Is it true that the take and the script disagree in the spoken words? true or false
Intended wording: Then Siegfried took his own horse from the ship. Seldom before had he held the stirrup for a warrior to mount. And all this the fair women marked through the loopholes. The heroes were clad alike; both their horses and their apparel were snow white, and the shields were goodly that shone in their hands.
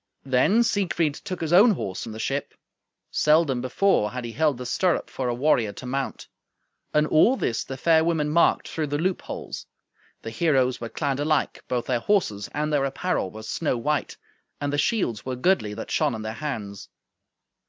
false